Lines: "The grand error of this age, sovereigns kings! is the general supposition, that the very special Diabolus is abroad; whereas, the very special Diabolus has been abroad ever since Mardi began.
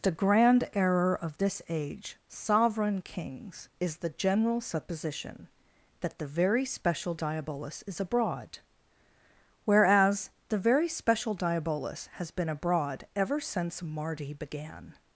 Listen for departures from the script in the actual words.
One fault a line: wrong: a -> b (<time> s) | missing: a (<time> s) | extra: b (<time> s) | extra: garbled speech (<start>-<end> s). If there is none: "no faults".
wrong: sovereigns -> sovereign (2.3 s)